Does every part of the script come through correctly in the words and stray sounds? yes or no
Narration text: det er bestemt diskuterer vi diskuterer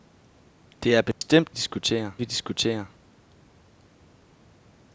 no